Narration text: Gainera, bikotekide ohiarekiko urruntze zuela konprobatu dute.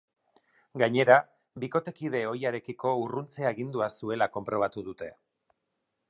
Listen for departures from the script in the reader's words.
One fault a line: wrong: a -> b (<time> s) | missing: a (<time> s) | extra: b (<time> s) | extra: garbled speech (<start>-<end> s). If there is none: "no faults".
extra: agindua (3.5 s)